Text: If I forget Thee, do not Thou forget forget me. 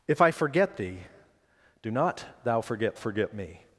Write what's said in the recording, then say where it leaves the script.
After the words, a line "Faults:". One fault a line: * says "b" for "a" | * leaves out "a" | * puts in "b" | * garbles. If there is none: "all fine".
If I forget Thee, do not Thou forget forget me.
Faults:
all fine